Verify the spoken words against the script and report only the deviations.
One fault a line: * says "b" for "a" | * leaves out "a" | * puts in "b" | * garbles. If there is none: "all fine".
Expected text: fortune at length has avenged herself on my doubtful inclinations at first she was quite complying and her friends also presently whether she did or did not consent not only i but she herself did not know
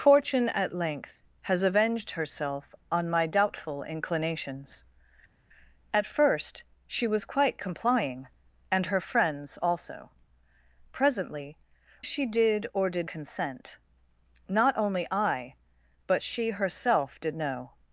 * leaves out "whether"
* leaves out "not"
* leaves out "not"